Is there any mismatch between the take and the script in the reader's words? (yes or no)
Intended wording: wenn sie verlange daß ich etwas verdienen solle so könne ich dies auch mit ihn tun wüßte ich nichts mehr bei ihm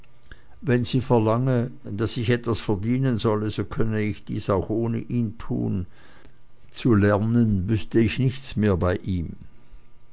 yes